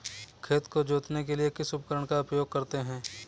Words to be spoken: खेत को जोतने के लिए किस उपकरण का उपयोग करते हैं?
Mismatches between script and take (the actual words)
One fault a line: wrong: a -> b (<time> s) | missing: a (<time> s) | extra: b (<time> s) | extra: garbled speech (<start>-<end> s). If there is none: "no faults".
no faults